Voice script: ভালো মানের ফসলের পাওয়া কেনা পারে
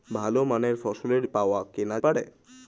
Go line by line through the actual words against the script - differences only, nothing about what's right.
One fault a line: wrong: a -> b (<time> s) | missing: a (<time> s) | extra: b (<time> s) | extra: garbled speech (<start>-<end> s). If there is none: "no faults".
no faults